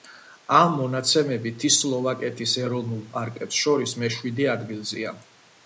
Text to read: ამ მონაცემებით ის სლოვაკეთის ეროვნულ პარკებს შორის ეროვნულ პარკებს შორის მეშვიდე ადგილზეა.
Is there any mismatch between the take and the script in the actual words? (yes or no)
yes